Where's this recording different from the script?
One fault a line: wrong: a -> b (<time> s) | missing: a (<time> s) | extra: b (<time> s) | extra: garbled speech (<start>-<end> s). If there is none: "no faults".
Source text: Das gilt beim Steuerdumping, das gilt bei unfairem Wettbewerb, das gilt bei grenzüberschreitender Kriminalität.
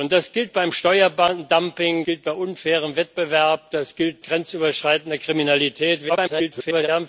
missing: das (2.0 s)
missing: bei (4.2 s)
extra: garbled speech (6.1-6.9 s)